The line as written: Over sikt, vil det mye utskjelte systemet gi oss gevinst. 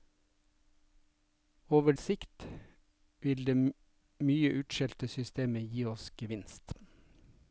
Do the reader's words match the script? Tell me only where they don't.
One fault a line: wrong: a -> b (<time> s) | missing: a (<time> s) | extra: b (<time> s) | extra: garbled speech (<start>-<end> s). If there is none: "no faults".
no faults